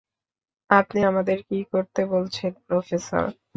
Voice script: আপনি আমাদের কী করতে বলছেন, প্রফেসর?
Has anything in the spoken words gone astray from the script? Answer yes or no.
no